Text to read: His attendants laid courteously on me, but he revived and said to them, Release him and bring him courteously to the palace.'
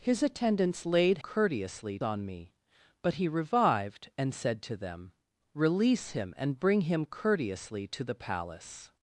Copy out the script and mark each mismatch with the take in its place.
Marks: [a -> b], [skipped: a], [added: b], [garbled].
His attendants laid courteously on me, but he revived and said to them, Release him and bring him courteously to the palace.'